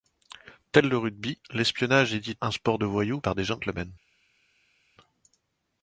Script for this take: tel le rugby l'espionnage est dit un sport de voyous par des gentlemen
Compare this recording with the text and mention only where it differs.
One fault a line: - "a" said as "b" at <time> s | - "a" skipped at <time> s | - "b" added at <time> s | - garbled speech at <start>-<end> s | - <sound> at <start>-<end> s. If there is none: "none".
none